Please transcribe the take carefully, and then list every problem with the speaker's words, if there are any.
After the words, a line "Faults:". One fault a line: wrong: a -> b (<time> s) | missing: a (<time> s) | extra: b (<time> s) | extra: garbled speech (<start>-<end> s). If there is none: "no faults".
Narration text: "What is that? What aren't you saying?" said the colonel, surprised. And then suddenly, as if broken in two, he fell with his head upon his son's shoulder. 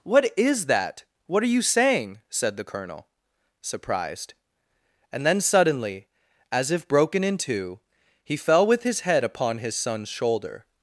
"What is that? What are you saying?" said the colonel, surprised. And then suddenly, as if broken in two, he fell with his head upon his son's shoulder.
Faults:
wrong: aren't -> are (1.4 s)